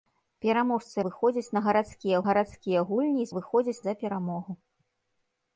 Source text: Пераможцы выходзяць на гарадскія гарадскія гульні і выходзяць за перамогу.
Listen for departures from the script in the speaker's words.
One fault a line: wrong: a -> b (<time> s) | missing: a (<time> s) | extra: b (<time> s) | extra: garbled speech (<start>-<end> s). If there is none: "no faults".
no faults